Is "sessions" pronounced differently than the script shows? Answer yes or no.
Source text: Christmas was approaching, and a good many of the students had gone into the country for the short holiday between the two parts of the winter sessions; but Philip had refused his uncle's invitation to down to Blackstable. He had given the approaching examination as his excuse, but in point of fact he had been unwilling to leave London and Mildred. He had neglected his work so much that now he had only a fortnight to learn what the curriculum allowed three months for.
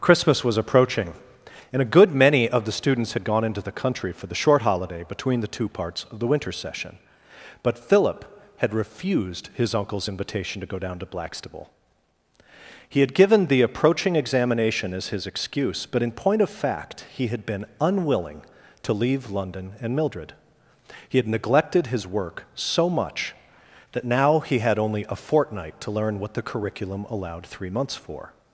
yes